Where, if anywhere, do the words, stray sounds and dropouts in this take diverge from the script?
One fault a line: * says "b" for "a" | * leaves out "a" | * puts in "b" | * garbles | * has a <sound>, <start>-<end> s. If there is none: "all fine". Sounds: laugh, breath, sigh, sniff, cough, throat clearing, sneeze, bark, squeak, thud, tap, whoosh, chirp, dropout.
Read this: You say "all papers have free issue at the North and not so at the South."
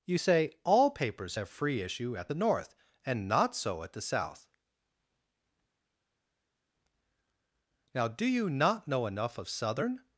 * puts in "Now do you not know enough of Southern"